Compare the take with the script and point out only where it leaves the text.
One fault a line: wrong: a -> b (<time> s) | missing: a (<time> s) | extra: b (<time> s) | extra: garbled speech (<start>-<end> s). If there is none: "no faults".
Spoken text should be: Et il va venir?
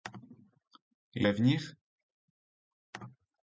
missing: il (1.3 s)